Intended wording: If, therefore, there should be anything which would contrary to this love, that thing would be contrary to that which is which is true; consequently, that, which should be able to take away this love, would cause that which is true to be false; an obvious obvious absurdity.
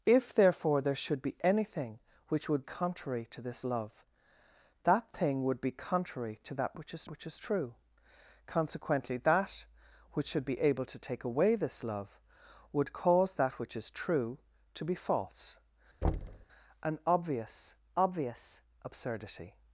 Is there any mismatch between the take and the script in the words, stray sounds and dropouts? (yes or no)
yes